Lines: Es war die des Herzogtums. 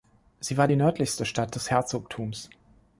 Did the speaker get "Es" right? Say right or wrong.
wrong